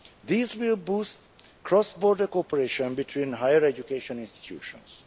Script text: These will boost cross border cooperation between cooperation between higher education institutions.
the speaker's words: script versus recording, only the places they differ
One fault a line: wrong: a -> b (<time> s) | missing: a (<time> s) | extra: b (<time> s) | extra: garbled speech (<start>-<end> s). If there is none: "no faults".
missing: cooperation between (3.3 s)